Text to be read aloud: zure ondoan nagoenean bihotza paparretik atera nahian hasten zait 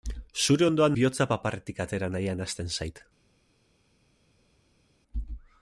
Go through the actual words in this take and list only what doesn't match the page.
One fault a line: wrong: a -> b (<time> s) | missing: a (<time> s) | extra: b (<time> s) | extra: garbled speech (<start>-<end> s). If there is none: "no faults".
missing: nagoenean (1.0 s)